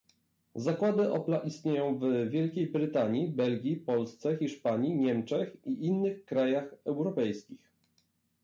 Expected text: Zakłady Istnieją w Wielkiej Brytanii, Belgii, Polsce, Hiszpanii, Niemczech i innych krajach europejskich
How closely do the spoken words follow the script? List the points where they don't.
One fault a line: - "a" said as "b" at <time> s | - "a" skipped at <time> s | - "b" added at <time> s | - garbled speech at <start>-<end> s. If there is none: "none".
- "Opla" added at 1.1 s